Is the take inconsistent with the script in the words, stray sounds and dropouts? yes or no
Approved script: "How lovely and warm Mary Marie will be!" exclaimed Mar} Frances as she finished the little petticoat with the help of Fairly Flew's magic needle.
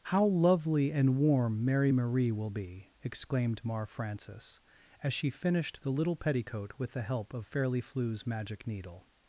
no